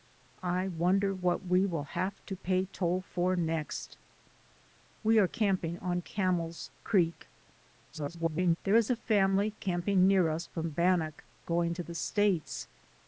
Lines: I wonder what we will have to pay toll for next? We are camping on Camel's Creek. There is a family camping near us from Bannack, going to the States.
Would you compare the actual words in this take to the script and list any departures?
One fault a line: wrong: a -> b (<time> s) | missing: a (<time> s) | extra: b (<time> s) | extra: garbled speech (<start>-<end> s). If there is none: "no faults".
extra: garbled speech (7.9-8.6 s)